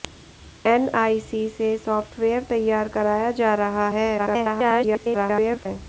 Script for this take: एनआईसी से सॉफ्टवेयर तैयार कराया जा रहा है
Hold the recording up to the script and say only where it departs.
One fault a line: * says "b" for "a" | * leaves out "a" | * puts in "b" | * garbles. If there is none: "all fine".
* garbles